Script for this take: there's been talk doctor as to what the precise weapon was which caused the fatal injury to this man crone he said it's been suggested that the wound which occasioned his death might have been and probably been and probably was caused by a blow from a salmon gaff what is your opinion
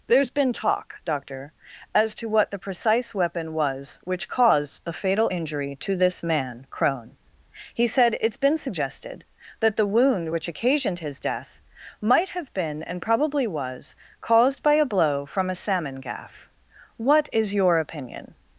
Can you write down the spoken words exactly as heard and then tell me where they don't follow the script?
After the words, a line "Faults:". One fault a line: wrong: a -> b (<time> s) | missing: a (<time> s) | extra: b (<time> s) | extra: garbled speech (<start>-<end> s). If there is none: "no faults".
there's been talk doctor as to what the precise weapon was which caused the fatal injury to this man crone he said it's been suggested that the wound which occasioned his death might have been and probably was caused by a blow from a salmon gaff what is your opinion
Faults:
missing: been and probably (13.5 s)